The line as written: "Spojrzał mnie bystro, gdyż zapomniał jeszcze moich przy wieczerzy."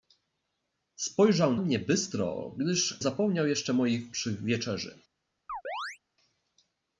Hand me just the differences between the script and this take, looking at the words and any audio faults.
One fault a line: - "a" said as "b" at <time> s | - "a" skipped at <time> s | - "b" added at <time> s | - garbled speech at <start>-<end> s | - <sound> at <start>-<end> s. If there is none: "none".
- chirp at 5.5-6.0 s